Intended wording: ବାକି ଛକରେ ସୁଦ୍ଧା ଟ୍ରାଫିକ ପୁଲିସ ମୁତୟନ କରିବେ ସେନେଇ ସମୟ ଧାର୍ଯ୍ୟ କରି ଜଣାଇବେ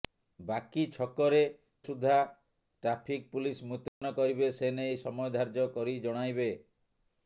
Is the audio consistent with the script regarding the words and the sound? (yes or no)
no